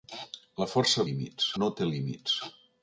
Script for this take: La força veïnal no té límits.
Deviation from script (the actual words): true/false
true